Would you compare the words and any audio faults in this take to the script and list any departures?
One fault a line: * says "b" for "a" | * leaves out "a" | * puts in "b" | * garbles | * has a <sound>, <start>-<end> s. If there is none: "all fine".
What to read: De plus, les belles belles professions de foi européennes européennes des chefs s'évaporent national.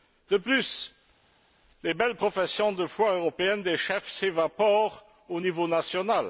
* leaves out "belles"
* leaves out "européennes"
* puts in "au niveau"